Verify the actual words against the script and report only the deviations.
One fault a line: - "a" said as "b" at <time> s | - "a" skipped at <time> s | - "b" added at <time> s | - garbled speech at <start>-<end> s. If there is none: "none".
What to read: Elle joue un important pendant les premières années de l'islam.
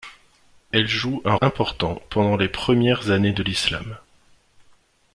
none